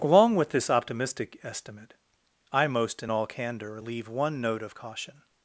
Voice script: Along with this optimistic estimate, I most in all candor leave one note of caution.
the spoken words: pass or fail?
pass